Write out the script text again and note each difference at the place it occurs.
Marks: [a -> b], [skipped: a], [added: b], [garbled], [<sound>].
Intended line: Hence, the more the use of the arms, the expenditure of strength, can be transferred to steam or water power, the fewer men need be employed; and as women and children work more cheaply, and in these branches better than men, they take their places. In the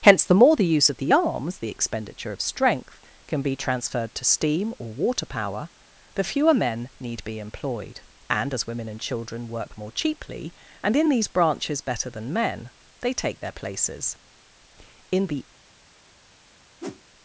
Hence, the more the use of the arms, the expenditure of strength, can be transferred to steam or water power, the fewer men need be employed; and as women and children work more cheaply, and in these branches better than men, they take their places. In the [whoosh]